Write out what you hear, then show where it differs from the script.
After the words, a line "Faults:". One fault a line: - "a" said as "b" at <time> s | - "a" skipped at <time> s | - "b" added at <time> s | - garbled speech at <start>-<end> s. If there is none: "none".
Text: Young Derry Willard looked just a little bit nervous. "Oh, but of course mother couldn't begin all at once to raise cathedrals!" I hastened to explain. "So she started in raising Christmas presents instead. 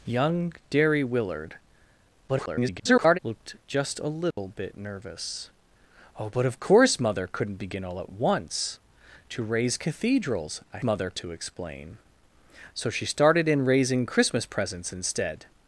Young Derry Willard [garbled] looked just a little bit nervous. "Oh, but of course mother couldn't begin all at once to raise cathedrals!" I mother to explain. "So she started in raising Christmas presents instead.
Faults:
- garbled speech at 2.3-3.2 s
- "hastened" said as "mother" at 10.8 s